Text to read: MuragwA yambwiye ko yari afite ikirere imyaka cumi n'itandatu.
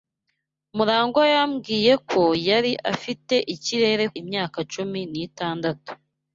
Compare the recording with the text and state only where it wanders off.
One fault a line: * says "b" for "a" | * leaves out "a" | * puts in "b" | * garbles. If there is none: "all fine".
all fine